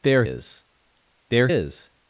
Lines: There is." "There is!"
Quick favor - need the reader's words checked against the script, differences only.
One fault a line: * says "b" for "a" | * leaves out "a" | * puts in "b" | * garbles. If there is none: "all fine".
all fine